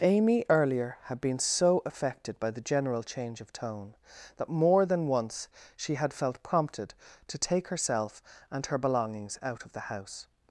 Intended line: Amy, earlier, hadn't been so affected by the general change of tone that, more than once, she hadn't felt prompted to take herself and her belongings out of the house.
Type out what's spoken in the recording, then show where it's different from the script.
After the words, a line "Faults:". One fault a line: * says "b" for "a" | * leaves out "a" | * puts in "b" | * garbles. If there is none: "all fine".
Amy, earlier, had been so affected by the general change of tone that, more than once, she had felt prompted to take herself and her belongings out of the house.
Faults:
* says "had" for "hadn't"
* says "had" for "hadn't"